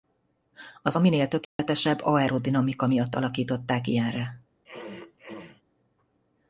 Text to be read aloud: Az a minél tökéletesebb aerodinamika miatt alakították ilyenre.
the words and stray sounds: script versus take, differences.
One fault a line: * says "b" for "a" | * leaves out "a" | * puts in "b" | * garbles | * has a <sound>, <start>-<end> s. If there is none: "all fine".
* has a dropout, 1.4-1.6 s
* has a throat clearing, 4.6-5.6 s